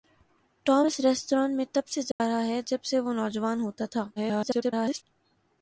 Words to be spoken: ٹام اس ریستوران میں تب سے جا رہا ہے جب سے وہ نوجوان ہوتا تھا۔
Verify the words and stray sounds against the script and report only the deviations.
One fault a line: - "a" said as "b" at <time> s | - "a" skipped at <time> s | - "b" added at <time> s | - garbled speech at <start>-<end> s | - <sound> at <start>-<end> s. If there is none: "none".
- dropout at 2.1-2.2 s
- garbled speech at 4.2-5.0 s